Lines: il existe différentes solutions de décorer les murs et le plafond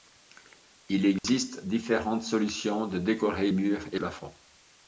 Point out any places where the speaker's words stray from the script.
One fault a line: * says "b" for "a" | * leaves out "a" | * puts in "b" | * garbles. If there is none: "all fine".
* leaves out "les"
* leaves out "le"